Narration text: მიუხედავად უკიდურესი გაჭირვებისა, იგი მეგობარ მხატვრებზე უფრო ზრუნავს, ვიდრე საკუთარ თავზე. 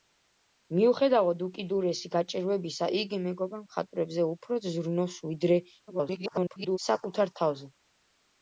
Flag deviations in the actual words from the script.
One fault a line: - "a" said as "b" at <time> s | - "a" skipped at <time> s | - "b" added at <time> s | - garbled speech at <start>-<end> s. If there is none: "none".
- garbled speech at 5.9-6.8 s